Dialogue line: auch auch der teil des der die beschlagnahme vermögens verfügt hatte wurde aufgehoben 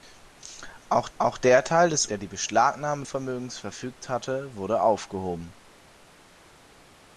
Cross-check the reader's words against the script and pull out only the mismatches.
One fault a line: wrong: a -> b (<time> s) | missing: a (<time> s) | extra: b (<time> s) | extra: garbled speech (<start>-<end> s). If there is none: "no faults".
no faults